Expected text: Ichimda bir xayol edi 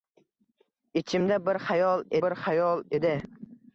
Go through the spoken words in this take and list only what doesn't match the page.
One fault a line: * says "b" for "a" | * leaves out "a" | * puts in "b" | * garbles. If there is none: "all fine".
* puts in "bir xayol"